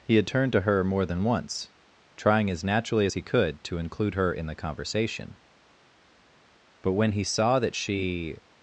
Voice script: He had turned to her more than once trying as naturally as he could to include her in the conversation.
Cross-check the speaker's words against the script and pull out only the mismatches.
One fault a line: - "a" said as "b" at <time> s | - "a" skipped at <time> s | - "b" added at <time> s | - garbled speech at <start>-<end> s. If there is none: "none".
- "But when he saw that she" added at 6.8 s